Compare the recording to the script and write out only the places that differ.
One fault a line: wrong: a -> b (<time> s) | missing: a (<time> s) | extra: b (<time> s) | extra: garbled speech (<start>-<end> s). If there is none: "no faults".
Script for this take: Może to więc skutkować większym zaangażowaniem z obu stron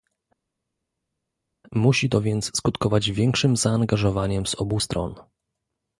wrong: Może -> Musi (1.7 s)